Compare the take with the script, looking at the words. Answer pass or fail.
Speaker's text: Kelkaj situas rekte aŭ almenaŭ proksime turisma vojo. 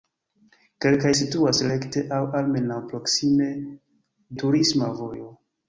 pass